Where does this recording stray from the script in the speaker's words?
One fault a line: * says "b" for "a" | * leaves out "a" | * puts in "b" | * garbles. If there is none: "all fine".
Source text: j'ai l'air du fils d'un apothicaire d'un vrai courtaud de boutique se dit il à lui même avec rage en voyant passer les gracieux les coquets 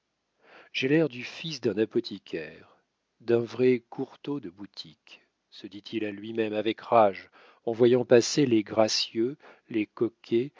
all fine